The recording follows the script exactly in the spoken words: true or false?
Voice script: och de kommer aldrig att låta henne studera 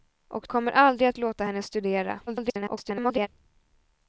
false